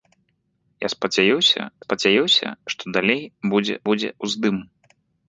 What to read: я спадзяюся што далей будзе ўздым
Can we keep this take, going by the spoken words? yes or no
no